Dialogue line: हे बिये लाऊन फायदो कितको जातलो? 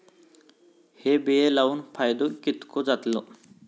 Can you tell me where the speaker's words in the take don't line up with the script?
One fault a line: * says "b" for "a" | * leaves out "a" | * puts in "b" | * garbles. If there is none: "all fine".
all fine